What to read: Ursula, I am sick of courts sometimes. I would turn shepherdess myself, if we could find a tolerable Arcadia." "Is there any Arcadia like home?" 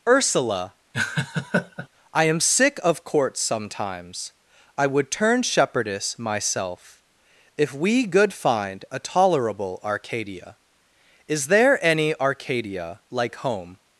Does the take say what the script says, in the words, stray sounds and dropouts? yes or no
no